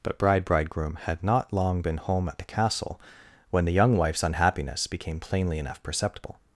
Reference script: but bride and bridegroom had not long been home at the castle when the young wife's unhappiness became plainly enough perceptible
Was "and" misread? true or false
true